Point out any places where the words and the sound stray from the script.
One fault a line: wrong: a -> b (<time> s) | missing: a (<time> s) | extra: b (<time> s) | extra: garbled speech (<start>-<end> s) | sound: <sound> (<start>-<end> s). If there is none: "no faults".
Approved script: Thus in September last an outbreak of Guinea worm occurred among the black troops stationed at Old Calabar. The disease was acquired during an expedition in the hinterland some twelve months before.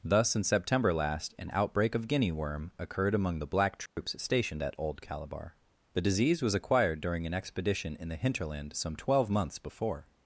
sound: dropout (3.9-4.0 s)